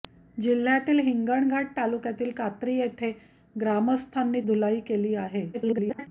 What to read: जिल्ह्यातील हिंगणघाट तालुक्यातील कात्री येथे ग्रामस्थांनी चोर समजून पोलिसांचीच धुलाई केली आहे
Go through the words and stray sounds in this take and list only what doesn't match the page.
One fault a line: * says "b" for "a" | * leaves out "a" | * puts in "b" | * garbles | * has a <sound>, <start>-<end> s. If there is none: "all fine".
* leaves out "चोर समजून पोलिसांचीच"
* garbles